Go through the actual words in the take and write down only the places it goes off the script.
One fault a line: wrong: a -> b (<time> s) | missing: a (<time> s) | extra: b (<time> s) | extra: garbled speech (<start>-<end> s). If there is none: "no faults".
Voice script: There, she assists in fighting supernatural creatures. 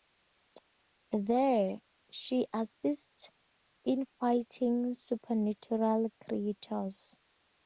no faults